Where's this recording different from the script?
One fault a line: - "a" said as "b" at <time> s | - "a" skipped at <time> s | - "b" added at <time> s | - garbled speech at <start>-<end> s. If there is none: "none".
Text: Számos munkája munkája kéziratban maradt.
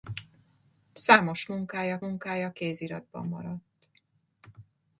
none